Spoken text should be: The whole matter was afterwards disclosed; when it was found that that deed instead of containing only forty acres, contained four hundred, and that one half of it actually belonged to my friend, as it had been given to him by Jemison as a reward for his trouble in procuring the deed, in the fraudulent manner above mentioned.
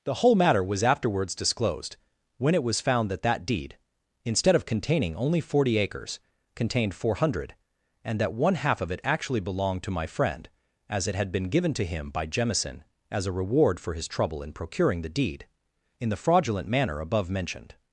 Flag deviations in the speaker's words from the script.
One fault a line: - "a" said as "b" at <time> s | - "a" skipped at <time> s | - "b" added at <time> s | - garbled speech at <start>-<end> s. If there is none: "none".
none